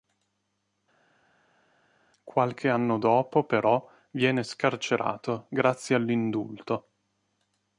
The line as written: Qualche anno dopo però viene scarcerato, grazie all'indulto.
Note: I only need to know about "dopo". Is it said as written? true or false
true